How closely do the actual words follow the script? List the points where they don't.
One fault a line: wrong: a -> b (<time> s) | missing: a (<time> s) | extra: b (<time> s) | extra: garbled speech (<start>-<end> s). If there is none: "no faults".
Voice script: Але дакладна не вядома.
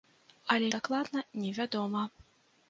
no faults